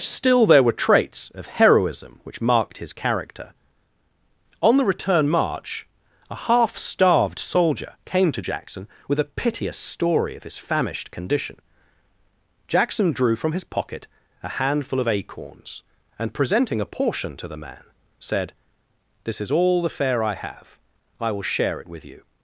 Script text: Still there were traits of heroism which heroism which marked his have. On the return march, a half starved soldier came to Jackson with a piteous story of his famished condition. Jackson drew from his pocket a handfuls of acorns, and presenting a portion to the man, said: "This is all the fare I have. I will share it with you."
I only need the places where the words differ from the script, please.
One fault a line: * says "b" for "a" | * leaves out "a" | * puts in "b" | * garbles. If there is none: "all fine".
* leaves out "heroism which"
* says "character" for "have"
* says "handful" for "handfuls"